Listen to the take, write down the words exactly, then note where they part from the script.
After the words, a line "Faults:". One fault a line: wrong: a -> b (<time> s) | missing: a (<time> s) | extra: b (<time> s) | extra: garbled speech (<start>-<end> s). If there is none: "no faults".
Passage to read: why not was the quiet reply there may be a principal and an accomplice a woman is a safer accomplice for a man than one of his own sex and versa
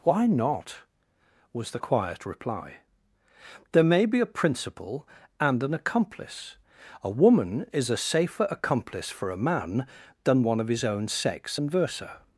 why not was the quiet reply there may be a principal and an accomplice a woman is a safer accomplice for a man than one of his own sex and versa
Faults:
no faults